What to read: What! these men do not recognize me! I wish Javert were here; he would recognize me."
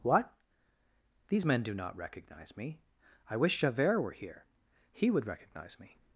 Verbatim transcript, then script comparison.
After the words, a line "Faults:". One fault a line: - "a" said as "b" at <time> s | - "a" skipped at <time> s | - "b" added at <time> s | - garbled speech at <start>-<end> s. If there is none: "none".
What! these men do not recognize me! I wish Javert were here; he would recognize me."
Faults:
none